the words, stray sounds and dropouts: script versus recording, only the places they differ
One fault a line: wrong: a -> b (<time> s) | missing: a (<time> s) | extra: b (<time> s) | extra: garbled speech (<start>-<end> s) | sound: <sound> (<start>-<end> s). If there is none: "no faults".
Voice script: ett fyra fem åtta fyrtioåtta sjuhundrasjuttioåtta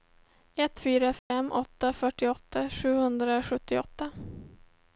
sound: dropout (1.2-1.3 s)